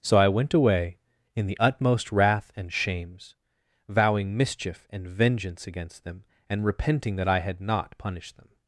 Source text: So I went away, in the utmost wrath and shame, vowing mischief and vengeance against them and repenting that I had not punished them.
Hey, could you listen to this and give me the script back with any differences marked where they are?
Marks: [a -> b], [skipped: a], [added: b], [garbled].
So I went away, in the utmost wrath and [shame, -> shames] vowing mischief and vengeance against them and repenting that I had not punished them.